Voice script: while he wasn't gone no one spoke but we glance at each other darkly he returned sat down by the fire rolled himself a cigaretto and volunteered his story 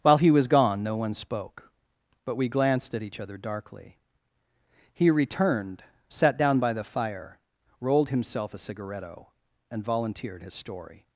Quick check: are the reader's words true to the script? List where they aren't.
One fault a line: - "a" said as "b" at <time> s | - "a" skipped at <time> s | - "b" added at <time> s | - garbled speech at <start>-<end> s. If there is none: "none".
- "wasn't" said as "was" at 0.3 s
- "glance" said as "glanced" at 2.5 s